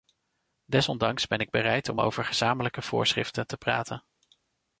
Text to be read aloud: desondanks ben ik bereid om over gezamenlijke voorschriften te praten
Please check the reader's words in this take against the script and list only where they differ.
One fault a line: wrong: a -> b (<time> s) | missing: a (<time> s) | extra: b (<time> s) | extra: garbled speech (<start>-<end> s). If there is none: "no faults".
no faults